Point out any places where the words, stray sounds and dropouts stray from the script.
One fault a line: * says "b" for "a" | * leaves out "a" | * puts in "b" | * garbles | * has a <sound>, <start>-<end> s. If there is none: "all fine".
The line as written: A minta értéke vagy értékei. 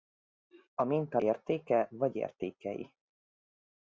all fine